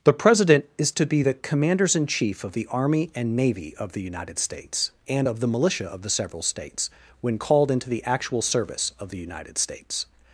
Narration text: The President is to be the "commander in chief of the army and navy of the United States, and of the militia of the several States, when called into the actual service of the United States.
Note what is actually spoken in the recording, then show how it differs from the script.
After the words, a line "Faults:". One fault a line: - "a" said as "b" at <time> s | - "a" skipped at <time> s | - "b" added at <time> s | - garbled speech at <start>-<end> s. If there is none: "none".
The President is to be the "commanders in chief of the army and navy of the United States, and of the militia of the several States, when called into the actual service of the United States.
Faults:
- "commander" said as "commanders" at 1.3 s